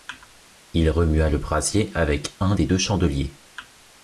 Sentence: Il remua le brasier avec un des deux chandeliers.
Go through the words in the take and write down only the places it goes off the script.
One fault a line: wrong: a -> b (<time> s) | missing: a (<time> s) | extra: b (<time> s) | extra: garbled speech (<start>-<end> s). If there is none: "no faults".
no faults